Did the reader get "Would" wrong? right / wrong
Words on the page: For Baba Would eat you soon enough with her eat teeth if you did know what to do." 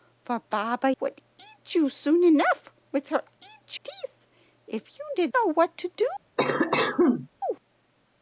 right